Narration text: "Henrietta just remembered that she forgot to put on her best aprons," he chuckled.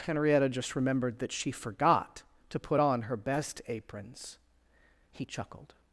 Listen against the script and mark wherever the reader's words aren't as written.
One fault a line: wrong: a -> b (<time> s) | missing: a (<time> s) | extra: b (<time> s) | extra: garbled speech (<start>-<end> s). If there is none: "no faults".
no faults